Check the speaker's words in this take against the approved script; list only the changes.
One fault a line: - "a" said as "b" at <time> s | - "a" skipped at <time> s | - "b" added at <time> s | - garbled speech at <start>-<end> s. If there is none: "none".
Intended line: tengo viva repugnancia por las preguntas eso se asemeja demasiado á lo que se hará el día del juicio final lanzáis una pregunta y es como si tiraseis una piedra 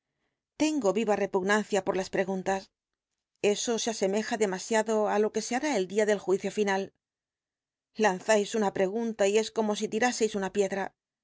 none